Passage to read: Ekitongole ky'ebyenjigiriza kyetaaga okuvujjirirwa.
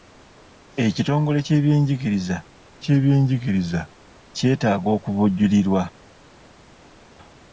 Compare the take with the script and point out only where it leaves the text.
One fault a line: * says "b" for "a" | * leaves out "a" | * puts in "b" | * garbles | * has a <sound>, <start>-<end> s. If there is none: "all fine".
* puts in "ky'ebyenjigiriza"